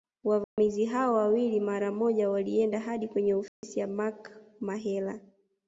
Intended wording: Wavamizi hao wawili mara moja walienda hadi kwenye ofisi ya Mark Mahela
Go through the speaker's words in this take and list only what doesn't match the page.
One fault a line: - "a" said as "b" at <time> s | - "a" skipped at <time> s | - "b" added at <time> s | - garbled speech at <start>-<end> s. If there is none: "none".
none